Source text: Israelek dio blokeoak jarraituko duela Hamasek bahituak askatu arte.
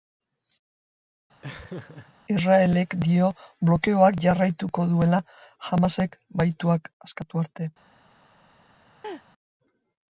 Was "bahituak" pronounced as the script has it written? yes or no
yes